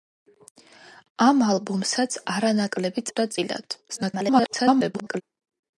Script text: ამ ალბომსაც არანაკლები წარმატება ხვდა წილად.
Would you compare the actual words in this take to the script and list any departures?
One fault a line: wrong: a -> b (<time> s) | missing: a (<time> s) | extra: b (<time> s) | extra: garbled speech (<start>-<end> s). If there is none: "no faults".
missing: წარმატება (3.1 s)
extra: garbled speech (3.9-5.2 s)